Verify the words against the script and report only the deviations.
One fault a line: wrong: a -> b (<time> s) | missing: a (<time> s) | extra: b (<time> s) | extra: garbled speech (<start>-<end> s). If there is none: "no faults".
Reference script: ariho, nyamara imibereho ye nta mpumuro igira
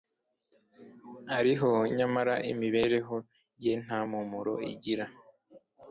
no faults